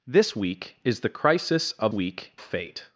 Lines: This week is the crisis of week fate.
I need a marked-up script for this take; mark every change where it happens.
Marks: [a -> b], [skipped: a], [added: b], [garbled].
This week is the crisis of week fate.